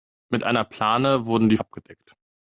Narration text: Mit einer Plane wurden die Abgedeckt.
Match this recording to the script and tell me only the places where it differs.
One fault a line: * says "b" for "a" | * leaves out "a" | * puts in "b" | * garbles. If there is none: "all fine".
all fine